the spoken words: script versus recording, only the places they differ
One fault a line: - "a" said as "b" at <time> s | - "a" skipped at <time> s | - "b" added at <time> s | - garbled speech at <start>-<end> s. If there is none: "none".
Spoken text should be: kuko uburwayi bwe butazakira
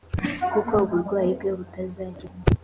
none